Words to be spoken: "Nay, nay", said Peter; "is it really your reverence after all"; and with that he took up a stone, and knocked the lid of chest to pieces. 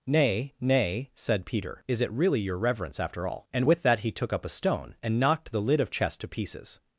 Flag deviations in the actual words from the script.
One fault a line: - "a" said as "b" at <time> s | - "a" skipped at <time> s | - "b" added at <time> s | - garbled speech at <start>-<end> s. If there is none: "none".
none